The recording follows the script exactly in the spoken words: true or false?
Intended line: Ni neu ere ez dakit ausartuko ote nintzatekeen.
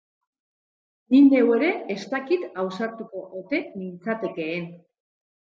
true